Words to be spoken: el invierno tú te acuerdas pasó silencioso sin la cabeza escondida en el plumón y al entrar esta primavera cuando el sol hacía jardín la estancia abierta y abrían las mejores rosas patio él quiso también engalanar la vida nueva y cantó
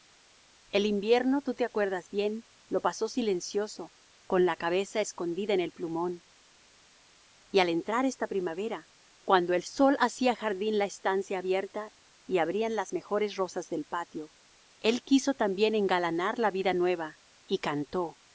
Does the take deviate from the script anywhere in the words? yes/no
yes